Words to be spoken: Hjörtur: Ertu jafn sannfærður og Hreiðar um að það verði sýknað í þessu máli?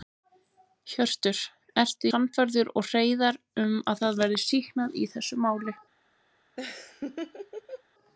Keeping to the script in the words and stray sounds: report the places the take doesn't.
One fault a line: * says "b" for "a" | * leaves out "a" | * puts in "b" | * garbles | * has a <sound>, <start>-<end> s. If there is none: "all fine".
* leaves out "jafn"
* has a laugh, 6.6-7.8 s